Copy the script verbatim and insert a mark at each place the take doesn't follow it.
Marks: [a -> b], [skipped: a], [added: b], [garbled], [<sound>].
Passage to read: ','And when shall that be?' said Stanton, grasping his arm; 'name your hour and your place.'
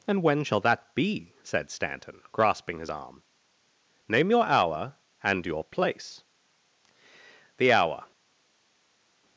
','And when shall that be?' said Stanton, grasping his arm; 'name your hour and your place.' [added: The hour]